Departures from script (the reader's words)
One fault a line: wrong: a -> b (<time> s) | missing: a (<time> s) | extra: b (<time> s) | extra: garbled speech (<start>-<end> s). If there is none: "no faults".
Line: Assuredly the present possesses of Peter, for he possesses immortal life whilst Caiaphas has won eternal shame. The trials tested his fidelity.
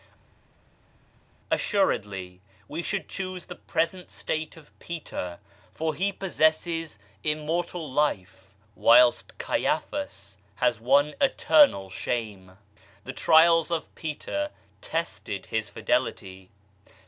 extra: we should choose (2.7 s)
wrong: possesses -> state (4.1 s)
extra: of Peter (13.7 s)